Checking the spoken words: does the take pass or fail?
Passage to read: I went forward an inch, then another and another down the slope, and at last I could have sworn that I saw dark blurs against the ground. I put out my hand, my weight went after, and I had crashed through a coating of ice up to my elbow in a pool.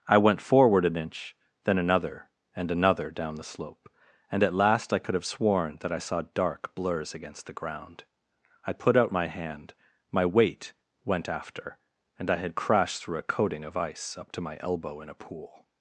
pass